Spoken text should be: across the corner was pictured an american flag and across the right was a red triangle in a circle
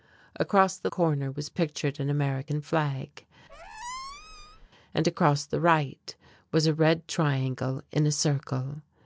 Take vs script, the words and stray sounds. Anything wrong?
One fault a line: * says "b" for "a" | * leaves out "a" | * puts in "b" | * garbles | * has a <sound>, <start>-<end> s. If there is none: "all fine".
* has a squeak, 3.5-4.7 s